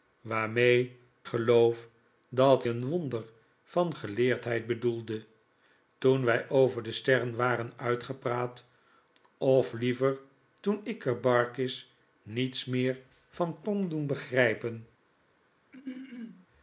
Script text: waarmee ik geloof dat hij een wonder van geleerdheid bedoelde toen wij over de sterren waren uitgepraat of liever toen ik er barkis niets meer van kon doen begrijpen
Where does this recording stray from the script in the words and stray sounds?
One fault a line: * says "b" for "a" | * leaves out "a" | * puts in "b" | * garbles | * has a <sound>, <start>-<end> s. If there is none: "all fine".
* leaves out "ik"
* leaves out "hij"
* has a throat clearing, 15.7-16.5 s